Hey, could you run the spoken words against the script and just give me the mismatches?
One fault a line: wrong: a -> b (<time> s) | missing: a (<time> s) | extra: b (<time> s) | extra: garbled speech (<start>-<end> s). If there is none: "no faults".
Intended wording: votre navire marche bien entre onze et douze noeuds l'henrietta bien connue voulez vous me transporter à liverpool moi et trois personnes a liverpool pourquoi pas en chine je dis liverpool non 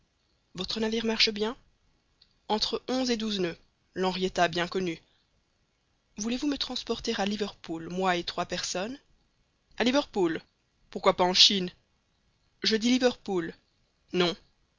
no faults